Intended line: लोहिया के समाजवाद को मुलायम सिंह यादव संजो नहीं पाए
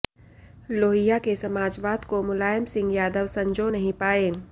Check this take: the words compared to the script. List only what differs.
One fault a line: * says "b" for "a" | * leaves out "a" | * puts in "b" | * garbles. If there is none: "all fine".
all fine